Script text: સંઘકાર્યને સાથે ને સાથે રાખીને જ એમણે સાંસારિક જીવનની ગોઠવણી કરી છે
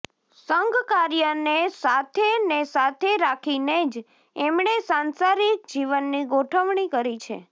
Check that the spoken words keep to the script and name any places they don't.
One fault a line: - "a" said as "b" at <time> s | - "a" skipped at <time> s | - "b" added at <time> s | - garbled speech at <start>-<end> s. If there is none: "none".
none